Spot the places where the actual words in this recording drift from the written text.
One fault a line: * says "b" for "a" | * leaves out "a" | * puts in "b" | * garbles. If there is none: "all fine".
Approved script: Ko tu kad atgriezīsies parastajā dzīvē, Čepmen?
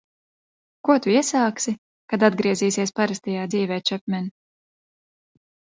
* puts in "iesāksi"